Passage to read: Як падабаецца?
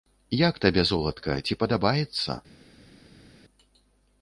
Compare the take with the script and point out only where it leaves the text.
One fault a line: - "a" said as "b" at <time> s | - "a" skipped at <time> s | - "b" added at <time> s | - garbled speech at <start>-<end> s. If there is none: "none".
- "табе золатка ці" added at 0.6 s